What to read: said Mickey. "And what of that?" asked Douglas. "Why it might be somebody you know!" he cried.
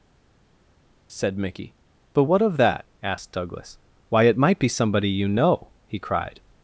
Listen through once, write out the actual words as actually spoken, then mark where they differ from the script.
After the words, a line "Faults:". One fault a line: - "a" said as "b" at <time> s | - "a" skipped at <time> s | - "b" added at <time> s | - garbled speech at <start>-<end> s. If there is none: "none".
said Mickey. "But what of that?" asked Douglas. "Why it might be somebody you know!" he cried.
Faults:
- "And" said as "But" at 2.1 s